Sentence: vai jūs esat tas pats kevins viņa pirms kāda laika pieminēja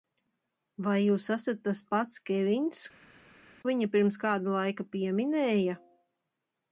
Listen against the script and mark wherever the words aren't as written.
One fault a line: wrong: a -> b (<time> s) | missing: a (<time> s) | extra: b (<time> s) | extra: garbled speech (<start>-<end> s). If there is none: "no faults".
no faults